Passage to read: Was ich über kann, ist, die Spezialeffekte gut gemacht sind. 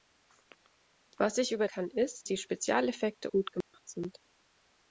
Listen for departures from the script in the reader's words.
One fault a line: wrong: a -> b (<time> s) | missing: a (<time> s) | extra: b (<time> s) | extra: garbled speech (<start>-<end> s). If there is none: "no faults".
no faults